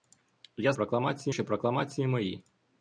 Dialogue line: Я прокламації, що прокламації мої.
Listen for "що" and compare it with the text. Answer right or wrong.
right